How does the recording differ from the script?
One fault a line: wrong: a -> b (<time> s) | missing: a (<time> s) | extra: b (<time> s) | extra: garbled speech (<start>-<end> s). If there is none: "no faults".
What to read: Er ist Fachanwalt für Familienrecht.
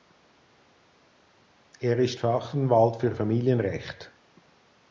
no faults